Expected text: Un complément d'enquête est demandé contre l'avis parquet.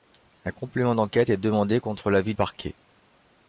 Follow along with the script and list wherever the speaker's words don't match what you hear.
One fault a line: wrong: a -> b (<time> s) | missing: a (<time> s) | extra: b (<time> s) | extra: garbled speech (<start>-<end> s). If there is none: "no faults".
no faults